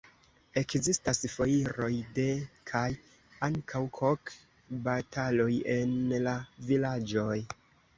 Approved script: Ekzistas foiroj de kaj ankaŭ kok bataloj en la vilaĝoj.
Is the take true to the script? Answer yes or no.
yes